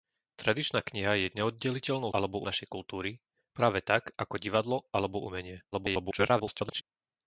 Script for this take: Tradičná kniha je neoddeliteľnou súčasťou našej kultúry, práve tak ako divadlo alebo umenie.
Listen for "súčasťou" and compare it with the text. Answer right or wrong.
wrong